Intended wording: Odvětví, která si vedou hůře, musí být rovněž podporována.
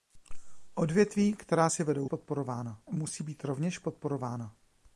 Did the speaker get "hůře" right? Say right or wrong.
wrong